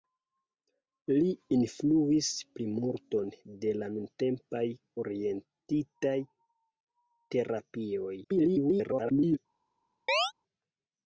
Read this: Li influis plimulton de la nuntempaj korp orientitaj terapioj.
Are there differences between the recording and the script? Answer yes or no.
yes